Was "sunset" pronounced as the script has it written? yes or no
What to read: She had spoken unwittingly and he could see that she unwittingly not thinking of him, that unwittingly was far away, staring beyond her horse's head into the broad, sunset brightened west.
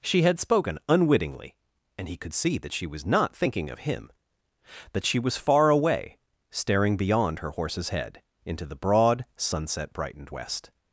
yes